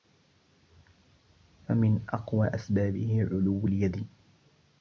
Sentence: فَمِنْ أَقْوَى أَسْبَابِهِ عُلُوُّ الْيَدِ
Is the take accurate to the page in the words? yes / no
yes